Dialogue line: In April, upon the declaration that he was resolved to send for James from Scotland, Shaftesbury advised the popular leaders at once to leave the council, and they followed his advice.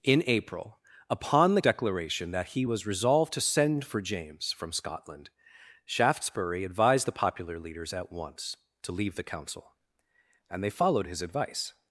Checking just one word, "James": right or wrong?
right